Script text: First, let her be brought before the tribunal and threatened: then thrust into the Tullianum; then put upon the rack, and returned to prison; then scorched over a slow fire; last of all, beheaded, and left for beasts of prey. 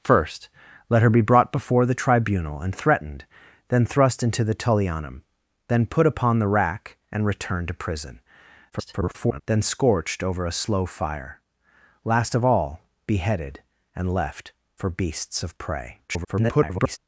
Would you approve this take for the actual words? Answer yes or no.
no